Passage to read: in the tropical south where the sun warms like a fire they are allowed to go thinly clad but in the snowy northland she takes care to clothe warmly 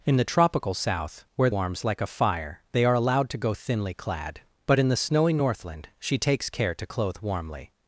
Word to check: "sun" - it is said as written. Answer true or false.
false